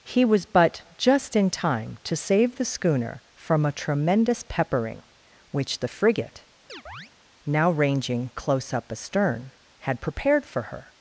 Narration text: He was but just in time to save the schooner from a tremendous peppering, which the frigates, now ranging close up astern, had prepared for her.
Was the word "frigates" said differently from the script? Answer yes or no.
yes